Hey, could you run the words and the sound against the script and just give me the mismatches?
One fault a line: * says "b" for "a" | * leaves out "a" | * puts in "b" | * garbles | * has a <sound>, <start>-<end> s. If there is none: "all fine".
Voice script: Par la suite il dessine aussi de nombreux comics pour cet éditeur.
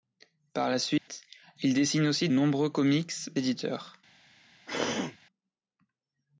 * has a dropout, 1.0-1.1 s
* leaves out "de"
* leaves out "pour cet"
* has a throat clearing, 4.7-5.2 s